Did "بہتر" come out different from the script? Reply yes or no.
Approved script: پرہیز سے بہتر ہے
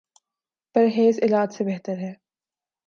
no